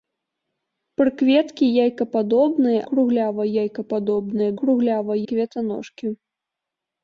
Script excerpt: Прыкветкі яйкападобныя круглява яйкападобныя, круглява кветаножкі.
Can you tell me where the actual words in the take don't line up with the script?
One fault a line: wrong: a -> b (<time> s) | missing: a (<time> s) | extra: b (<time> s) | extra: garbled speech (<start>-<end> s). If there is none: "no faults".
no faults